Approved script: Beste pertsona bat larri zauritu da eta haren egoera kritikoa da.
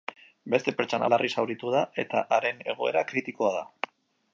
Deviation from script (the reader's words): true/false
true